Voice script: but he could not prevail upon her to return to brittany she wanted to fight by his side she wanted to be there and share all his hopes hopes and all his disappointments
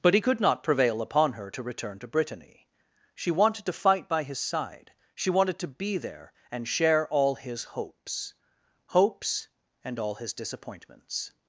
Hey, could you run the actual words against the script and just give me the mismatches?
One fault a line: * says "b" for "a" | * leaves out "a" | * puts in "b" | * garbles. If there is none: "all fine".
all fine